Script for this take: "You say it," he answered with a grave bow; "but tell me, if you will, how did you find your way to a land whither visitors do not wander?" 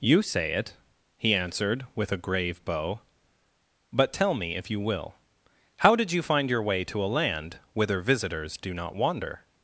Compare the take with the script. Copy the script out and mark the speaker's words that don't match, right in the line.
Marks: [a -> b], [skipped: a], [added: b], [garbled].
"You say it," he answered with a grave bow; "but tell me, if you will, how did you find your way to a land whither visitors do not wander?"